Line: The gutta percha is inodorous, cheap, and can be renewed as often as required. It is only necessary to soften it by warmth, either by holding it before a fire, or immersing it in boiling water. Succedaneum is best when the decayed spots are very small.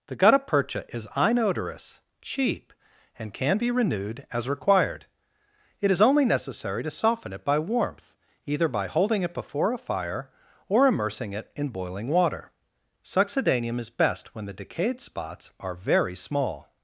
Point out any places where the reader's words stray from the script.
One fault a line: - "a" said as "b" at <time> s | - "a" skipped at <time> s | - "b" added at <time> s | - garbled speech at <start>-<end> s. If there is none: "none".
- "often as" skipped at 4.5 s